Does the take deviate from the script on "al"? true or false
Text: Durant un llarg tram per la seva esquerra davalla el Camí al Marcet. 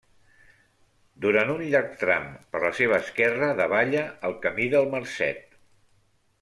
true